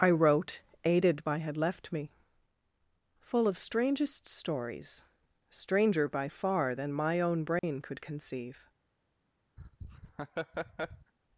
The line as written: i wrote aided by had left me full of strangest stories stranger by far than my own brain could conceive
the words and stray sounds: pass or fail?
fail